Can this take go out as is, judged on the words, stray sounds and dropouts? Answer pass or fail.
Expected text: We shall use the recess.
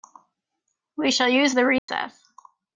fail